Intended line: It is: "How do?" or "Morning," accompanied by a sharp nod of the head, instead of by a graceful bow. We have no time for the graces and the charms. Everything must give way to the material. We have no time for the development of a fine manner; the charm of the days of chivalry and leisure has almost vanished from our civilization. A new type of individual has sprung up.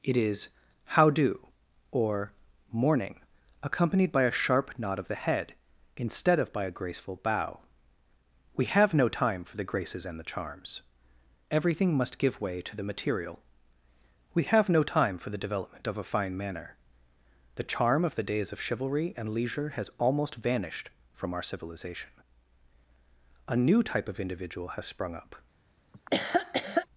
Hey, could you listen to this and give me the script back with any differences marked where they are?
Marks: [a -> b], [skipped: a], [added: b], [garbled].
It is: "How do?" or "Morning," accompanied by a sharp nod of the head, instead of by a graceful bow. We have no time for the graces and the charms. Everything must give way to the material. We have no time for the development of a fine manner; the charm of the days of chivalry and leisure has almost vanished from our civilization. A new type of individual has sprung up.